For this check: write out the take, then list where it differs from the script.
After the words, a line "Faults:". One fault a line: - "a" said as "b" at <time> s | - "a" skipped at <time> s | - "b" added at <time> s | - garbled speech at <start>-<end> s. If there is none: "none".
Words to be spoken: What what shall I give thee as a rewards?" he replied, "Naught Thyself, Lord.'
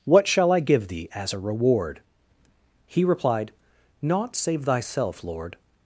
What shall I give thee as a reward?" he replied, "Naught save Thyself, Lord.'
Faults:
- "what" skipped at 0.3 s
- "rewards" said as "reward" at 1.4 s
- "save" added at 4.3 s